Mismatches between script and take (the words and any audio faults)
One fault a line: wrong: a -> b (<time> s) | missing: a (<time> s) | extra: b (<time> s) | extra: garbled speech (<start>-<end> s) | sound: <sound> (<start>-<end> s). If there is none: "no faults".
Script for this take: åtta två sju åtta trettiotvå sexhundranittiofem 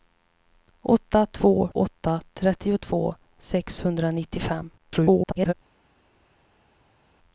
missing: sju (1.7 s)
extra: garbled speech (4.8-5.5 s)